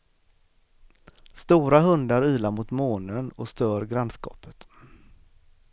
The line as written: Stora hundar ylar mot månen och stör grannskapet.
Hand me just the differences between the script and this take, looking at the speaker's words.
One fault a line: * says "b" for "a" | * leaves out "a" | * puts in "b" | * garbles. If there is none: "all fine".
all fine